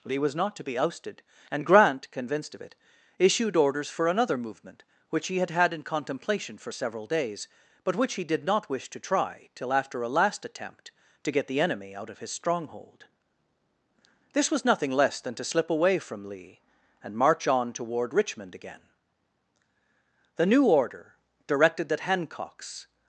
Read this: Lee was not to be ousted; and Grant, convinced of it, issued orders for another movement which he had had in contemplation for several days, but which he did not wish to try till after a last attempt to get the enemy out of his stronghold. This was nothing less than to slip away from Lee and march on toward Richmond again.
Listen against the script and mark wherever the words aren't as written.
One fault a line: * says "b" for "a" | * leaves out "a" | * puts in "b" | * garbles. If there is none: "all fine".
* puts in "The new order directed that Hancock's"